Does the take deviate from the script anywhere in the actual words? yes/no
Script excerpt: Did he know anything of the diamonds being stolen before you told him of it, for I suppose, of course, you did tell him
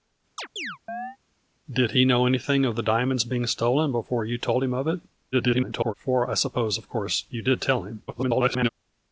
yes